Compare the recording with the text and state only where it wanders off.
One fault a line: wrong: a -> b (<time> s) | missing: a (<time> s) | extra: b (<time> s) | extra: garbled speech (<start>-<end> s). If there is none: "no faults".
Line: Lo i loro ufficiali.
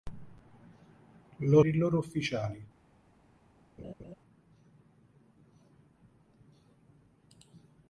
no faults